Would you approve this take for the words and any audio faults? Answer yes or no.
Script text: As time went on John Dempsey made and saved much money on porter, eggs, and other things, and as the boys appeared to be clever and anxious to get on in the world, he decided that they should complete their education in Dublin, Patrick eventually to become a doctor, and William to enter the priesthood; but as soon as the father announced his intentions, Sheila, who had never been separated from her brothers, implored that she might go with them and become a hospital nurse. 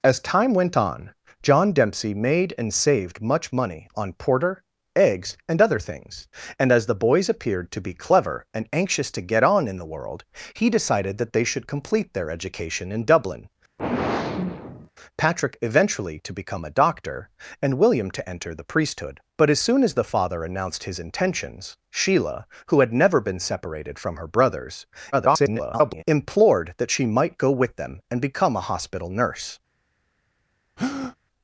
no